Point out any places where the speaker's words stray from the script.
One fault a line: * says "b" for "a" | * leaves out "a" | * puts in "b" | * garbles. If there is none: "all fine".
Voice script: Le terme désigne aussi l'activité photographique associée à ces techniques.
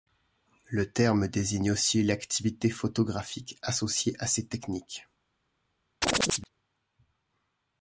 all fine